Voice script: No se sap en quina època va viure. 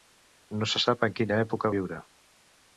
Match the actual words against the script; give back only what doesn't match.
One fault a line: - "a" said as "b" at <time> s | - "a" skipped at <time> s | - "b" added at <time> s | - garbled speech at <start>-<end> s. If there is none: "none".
- "va" skipped at 1.7 s